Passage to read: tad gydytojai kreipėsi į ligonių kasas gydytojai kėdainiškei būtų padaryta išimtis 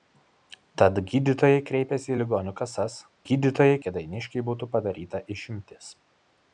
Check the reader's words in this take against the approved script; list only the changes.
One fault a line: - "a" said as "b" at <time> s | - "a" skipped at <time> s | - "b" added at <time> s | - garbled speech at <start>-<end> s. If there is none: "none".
none